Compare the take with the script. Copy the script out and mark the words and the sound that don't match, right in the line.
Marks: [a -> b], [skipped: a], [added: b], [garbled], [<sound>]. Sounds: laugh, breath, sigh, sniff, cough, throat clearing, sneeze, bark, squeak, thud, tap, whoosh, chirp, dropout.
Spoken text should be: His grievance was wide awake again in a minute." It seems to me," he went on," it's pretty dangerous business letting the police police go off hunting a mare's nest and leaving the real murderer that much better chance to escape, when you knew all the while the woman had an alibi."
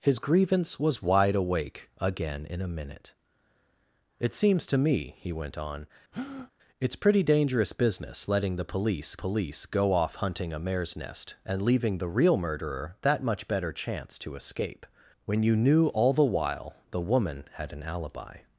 His grievance was wide awake again in a minute." It seems to me," he went on," [breath] it's pretty dangerous business letting the police police go off hunting a mare's nest and leaving the real murderer that much better chance to escape, when you knew all the while the woman had an alibi."